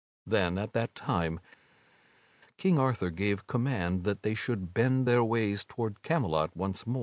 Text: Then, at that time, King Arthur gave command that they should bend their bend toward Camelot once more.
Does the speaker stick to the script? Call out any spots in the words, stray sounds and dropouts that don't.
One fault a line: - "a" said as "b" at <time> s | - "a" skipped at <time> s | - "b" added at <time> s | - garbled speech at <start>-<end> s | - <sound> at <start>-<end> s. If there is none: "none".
- "bend" said as "ways" at 5.2 s